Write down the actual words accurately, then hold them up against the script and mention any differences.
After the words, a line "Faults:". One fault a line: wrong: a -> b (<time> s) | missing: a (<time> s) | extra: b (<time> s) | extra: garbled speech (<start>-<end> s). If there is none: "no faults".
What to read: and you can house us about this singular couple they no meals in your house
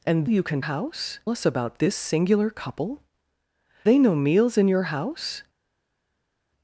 and you can house us about this singular couple they no meals in your house
Faults:
no faults